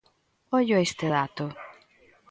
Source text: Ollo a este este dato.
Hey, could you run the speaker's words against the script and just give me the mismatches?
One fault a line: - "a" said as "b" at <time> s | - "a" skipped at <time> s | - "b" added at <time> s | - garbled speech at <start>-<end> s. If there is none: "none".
- "este" skipped at 1.1 s